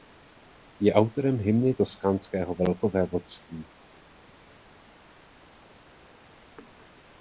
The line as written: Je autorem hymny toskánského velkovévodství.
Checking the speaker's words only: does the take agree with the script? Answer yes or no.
yes